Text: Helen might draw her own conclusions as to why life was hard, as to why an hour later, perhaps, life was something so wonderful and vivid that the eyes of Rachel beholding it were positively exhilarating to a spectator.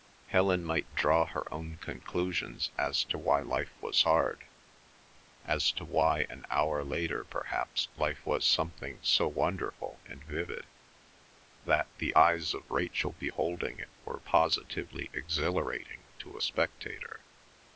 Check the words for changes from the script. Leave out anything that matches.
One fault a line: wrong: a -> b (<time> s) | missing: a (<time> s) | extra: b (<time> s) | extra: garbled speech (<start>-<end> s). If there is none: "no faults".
no faults